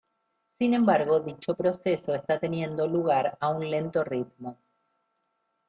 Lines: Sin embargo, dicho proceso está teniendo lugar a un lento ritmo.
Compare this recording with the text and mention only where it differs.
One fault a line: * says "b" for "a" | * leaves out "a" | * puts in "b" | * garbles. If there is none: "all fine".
all fine